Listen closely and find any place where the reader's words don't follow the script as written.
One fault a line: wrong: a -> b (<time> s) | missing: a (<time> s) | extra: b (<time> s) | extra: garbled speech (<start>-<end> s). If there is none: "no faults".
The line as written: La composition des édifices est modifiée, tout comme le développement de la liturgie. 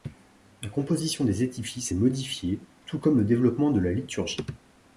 no faults